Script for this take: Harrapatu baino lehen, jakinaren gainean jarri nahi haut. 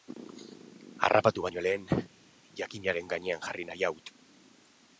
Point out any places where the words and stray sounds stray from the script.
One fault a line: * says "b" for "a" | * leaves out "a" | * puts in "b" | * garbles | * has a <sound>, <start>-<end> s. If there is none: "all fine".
all fine